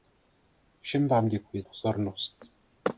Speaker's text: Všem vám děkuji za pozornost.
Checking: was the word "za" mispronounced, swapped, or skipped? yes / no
yes